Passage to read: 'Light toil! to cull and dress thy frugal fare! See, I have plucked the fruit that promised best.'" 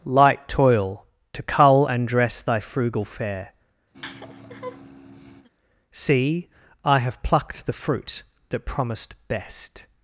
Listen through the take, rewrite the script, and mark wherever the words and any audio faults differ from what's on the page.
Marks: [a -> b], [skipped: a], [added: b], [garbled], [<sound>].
'Light toil! to cull and dress thy frugal fare! [laugh] See, I have plucked the fruit that promised best.'"